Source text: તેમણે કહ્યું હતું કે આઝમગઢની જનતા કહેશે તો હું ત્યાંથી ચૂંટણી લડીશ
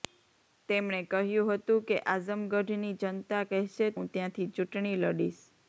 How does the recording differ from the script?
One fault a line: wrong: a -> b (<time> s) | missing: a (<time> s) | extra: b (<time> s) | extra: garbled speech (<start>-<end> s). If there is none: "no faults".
missing: તો (3.9 s)